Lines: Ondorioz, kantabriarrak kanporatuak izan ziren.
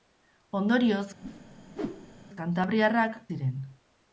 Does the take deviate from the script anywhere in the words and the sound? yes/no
yes